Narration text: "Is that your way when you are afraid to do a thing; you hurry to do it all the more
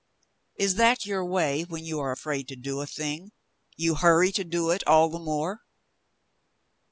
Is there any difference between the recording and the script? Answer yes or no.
no